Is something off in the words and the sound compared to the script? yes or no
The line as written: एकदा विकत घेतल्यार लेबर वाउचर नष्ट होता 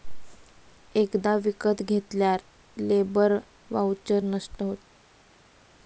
no